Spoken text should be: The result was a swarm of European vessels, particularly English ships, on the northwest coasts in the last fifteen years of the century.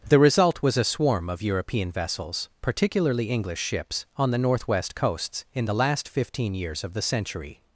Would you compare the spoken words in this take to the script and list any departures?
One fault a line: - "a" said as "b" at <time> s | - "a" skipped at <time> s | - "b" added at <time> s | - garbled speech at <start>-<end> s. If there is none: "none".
none